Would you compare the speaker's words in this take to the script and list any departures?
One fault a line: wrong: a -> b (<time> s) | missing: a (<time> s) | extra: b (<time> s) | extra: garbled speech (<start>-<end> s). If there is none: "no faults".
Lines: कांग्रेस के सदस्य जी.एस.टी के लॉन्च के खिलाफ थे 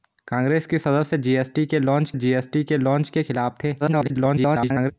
extra: जी.एस.टी के लॉन्च (2.1 s)
extra: garbled speech (3.8-4.9 s)